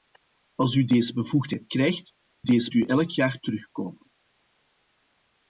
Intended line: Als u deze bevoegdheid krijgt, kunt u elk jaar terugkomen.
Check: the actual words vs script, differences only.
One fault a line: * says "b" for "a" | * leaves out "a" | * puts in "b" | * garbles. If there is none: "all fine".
* says "deze" for "kunt"